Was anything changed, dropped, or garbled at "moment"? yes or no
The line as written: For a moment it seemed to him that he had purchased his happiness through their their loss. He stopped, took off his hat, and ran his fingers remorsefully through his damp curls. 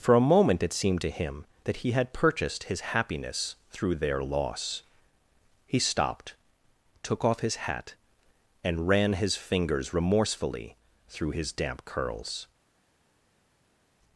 no